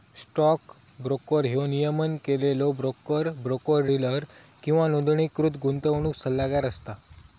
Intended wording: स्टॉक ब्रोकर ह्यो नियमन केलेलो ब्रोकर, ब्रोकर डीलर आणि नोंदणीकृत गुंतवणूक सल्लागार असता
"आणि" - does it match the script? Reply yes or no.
no